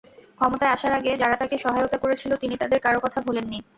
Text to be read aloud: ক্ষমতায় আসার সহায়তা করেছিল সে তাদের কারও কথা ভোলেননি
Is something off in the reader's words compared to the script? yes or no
yes